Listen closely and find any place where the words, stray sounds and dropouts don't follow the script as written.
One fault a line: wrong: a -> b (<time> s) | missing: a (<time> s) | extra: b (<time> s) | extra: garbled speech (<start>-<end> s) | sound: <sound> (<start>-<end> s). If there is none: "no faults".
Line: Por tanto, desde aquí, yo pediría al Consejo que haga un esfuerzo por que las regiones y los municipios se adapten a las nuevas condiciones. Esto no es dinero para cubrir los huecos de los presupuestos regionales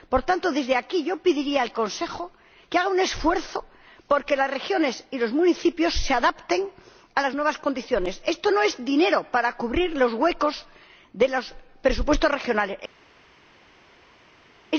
no faults